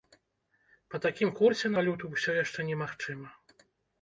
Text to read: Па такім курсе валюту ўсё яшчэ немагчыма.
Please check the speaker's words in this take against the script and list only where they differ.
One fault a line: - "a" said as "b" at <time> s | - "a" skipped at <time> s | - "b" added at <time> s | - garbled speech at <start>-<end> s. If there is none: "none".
none